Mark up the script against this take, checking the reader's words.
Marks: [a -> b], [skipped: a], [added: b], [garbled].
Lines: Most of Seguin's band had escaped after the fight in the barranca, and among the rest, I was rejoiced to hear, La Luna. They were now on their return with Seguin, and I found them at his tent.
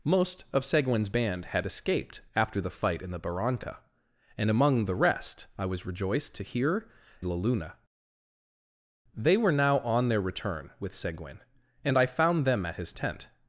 Most of Seguin's band had escaped after the fight in the barranca, and among the rest, I was rejoiced to hear, La Luna. They were now on their return with Seguin, and I found them at his tent.